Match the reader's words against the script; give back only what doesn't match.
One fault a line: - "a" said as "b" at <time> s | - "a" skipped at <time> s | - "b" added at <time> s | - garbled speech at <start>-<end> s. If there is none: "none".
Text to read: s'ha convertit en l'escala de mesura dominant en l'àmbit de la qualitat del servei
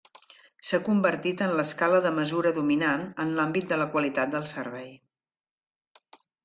none